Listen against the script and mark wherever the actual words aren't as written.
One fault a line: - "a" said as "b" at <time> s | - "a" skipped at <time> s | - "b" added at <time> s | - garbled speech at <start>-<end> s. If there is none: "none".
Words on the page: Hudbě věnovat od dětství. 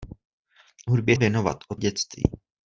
none